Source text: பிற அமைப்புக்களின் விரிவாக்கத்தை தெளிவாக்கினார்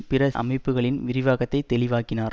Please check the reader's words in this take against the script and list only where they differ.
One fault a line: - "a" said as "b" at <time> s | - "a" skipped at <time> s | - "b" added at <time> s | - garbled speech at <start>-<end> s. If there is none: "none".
none